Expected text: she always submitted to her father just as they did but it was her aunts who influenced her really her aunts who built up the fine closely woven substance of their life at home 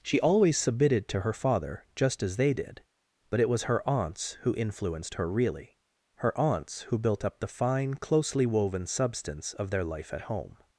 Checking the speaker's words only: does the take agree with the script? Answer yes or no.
yes